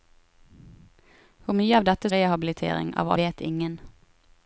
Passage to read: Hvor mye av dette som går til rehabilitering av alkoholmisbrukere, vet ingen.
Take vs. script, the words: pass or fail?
fail